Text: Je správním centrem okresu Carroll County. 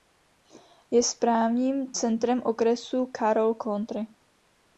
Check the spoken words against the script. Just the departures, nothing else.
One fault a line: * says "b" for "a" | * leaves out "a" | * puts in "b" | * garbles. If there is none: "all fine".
all fine